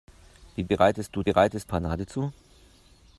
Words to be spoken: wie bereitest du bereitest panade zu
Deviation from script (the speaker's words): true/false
false